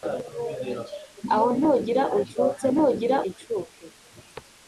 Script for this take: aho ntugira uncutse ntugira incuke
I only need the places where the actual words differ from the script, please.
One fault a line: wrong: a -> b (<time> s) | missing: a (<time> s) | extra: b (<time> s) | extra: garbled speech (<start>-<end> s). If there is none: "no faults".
no faults